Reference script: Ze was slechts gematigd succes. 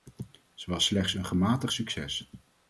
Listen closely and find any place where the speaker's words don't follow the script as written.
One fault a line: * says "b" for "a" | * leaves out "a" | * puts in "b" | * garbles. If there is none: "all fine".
* puts in "een"